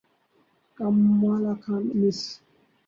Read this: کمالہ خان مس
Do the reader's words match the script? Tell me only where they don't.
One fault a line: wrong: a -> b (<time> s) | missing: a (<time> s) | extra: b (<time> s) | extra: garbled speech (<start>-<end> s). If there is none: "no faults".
no faults